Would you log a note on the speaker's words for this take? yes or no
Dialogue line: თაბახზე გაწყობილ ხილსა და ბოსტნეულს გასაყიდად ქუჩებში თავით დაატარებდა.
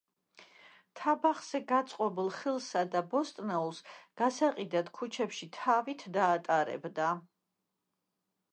no